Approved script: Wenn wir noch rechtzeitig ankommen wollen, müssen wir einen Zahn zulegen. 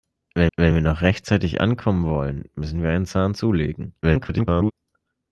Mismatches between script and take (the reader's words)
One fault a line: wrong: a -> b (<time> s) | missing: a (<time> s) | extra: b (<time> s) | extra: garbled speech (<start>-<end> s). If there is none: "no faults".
extra: wenn (0.6 s)
extra: garbled speech (4.0-4.7 s)